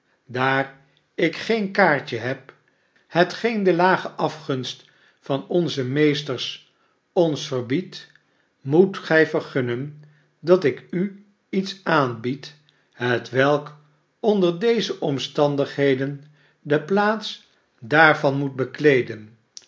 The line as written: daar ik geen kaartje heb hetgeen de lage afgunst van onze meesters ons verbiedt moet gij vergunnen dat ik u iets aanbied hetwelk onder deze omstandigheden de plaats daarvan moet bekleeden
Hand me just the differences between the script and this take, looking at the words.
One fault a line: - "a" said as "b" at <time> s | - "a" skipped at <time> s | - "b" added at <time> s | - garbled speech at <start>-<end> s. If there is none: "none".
none